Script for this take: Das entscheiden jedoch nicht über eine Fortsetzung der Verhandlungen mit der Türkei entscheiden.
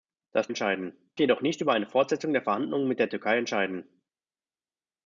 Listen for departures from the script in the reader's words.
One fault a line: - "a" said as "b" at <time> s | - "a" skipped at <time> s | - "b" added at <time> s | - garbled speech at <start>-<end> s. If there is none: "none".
none